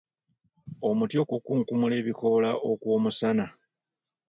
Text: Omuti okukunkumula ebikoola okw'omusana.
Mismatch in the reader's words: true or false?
false